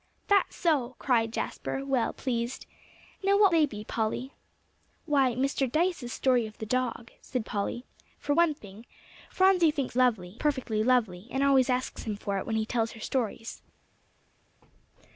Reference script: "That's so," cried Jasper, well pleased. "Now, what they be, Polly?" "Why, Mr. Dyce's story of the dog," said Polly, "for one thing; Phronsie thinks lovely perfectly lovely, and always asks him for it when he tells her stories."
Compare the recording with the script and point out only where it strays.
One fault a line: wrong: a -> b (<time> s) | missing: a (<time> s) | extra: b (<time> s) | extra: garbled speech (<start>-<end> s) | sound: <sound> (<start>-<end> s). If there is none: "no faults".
no faults